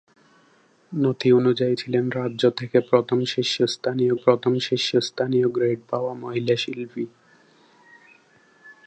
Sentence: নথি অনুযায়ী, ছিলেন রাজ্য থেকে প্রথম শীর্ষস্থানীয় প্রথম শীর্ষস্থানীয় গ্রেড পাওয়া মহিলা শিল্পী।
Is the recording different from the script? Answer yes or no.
no